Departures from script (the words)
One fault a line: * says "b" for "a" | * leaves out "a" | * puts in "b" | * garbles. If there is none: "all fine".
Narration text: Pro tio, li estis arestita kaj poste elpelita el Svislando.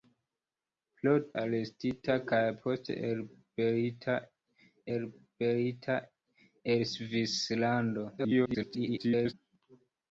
* leaves out "tio li estis"
* puts in "elpelita"
* garbles